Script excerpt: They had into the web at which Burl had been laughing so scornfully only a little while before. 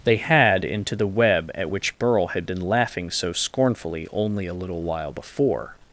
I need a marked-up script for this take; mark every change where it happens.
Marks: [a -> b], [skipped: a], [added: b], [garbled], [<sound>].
They had into the web at which Burl had been laughing so scornfully only a little while before.